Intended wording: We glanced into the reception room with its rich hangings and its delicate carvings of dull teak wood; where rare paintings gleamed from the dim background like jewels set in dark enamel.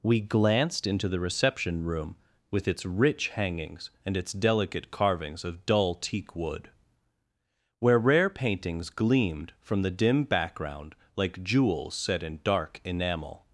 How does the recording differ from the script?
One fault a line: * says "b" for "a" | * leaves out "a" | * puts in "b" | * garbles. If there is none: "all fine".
all fine